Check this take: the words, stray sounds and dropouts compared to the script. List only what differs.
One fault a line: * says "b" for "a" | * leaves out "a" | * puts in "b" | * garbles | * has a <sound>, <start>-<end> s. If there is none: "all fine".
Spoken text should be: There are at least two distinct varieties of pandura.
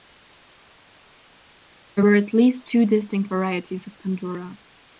* says "were" for "are"